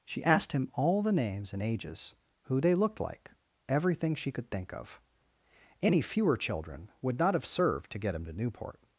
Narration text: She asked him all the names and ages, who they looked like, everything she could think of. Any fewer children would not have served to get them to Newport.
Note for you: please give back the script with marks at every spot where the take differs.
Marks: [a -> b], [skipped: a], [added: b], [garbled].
She asked him all the names and ages, who they looked like, everything she could think of. Any fewer children would not have served to get [them -> him] to Newport.